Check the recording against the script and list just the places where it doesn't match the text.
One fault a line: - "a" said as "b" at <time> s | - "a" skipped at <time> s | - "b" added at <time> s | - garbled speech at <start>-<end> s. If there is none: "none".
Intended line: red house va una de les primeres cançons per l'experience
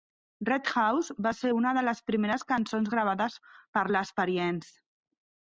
- "ser" added at 1.4 s
- "gravades" added at 2.9 s